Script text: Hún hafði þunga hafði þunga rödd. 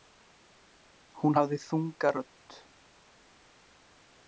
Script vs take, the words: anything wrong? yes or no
yes